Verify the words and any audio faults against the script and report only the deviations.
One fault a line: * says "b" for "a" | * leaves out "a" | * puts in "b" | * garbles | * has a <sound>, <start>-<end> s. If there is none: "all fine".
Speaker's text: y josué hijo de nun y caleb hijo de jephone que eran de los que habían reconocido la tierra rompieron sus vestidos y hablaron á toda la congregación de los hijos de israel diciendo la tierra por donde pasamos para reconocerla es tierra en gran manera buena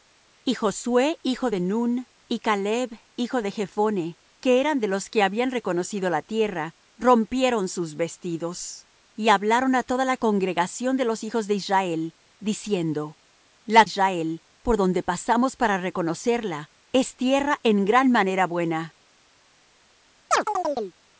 * says "israel" for "tierra"
* has a chirp, 20.3-21.0 s